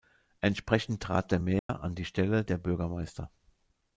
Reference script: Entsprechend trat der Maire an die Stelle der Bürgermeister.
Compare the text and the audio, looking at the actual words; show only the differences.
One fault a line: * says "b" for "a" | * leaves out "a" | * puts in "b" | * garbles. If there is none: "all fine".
all fine